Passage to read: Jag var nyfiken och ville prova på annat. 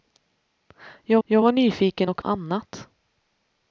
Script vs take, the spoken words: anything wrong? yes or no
yes